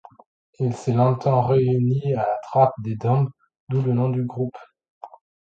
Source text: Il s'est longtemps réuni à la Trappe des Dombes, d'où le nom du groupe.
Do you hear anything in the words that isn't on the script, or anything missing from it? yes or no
no